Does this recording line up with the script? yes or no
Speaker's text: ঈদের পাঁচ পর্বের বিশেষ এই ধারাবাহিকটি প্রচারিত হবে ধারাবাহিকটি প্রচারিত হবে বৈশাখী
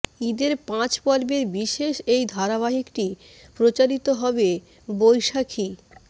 no